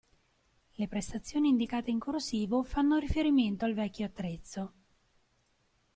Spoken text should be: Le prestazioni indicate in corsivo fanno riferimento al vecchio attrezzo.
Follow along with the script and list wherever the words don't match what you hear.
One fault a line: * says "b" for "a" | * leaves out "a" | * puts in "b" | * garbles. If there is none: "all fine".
all fine